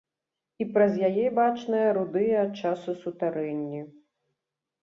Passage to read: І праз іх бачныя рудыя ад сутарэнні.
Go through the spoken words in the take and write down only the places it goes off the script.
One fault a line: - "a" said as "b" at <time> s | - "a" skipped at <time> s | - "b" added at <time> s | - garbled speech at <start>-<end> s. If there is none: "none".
- "іх" said as "яе" at 1.1 s
- "часу" added at 2.6 s